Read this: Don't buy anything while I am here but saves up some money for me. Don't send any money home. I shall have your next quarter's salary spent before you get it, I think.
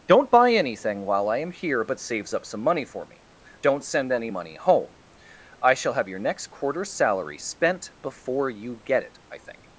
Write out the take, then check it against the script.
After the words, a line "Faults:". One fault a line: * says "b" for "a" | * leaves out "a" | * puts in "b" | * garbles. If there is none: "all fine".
Don't buy anything while I am here but saves up some money for me. Don't send any money home. I shall have your next quarter's salary spent before you get it, I think.
Faults:
all fine